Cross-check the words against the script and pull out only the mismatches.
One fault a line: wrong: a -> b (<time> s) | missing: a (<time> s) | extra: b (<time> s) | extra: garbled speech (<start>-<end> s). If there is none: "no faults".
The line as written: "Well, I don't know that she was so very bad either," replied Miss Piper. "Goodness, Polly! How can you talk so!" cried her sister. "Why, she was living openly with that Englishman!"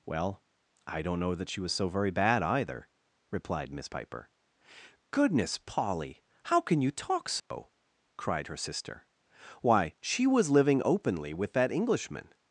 no faults